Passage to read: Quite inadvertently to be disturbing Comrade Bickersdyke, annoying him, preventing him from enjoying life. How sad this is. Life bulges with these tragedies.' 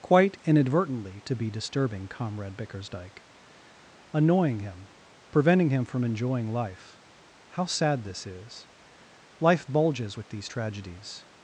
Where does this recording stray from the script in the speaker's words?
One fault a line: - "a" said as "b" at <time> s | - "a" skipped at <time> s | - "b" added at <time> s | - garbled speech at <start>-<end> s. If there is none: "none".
none